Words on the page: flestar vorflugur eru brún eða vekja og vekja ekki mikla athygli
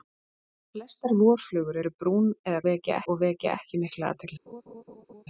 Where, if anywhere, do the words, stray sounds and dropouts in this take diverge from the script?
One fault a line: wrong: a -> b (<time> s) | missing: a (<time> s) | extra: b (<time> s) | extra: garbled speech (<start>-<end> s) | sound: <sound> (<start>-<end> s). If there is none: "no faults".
sound: laugh (4.5-5.2 s)